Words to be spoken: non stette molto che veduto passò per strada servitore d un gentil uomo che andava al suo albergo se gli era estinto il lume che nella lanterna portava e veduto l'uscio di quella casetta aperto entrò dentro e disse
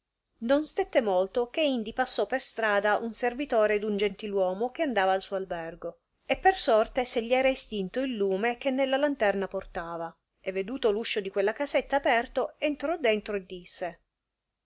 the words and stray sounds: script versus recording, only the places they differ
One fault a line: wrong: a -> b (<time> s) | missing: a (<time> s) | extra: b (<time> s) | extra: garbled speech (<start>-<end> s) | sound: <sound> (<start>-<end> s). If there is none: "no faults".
wrong: veduto -> indi (1.6 s)
extra: un (3.0 s)
extra: e per sorte (6.2 s)